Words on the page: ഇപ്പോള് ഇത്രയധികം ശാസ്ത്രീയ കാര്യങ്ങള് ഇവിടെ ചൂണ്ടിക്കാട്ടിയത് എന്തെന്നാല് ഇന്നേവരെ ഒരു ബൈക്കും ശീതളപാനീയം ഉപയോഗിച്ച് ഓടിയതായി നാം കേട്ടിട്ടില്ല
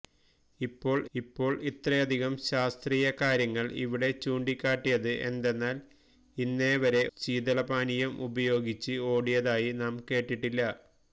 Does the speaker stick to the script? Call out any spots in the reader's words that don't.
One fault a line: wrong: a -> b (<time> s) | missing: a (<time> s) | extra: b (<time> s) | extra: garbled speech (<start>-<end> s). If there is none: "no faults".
extra: ഇപ്പോള് (1.1 s)
missing: ഒരു ബൈക്കും (7.0 s)